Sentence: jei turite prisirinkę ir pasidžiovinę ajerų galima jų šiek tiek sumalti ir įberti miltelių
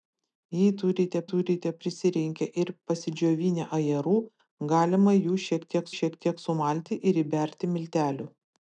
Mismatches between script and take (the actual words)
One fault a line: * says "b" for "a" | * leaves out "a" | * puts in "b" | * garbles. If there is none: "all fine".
* puts in "turite"
* puts in "šiek tiek"